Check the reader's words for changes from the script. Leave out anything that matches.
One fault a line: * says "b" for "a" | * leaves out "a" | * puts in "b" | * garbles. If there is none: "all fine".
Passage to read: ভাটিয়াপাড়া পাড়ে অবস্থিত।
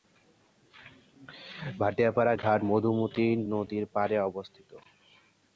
* puts in "ঘাট মধুমতি নদীর"